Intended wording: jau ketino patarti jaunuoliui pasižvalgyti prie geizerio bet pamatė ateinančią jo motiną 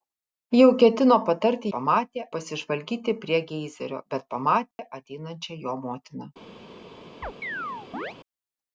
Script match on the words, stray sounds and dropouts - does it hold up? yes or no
no